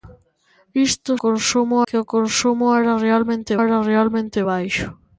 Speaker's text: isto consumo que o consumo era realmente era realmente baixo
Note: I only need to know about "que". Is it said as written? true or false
true